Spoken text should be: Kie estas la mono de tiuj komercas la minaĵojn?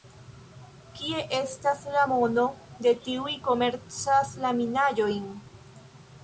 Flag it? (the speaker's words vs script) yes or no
no